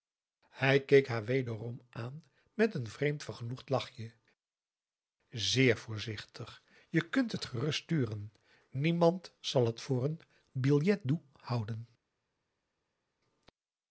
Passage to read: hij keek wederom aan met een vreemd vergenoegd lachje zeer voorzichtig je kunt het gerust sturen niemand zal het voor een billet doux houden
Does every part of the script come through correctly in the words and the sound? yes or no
no